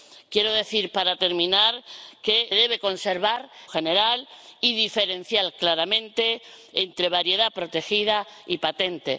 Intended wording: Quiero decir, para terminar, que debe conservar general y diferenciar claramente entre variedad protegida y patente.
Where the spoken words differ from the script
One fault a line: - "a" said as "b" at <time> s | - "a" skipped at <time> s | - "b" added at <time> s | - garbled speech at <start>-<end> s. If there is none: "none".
none